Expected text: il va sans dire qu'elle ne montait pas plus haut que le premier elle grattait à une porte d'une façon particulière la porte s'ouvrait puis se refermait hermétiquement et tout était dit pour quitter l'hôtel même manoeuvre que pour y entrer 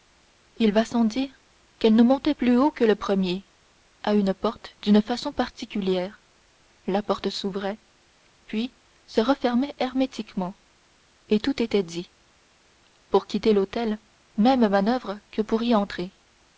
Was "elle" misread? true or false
true